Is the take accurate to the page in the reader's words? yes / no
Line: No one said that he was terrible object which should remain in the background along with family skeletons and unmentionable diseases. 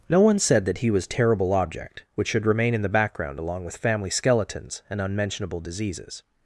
yes